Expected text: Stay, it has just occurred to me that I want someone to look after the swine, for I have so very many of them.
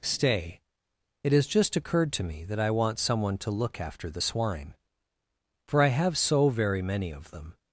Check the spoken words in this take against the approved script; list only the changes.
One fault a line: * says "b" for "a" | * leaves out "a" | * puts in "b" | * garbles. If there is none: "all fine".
all fine